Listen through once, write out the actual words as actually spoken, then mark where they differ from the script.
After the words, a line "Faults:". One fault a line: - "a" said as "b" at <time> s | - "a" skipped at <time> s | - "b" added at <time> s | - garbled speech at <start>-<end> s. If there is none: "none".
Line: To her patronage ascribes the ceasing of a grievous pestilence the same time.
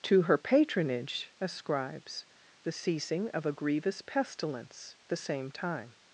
To her patronage ascribes the ceasing of a grievous pestilence the same time.
Faults:
none